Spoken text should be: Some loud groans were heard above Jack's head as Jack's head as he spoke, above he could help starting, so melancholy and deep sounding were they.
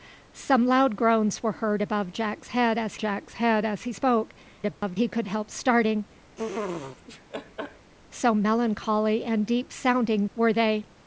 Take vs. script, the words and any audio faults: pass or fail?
fail